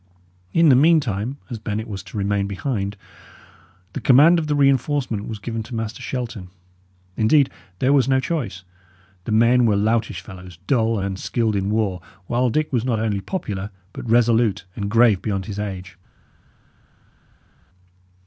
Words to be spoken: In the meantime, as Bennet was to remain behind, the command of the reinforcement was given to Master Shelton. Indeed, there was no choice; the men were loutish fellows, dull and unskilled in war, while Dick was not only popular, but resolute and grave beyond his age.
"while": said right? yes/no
yes